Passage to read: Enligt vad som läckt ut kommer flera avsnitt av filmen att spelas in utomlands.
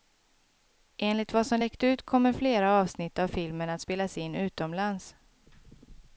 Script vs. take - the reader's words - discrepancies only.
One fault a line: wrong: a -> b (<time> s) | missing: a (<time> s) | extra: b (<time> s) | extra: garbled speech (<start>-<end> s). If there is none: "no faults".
no faults